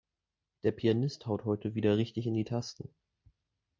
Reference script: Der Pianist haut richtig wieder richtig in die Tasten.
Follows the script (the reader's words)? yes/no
no